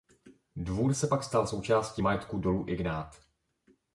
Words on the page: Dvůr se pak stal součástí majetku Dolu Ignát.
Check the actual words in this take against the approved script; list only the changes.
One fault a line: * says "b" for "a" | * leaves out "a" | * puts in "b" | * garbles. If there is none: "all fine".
all fine